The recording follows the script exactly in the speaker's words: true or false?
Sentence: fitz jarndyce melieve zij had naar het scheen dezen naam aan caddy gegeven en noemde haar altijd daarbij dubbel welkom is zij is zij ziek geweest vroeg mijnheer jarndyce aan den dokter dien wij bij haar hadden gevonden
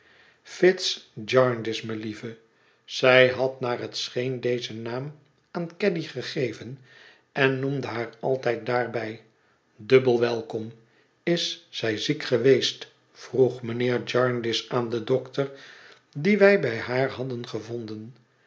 false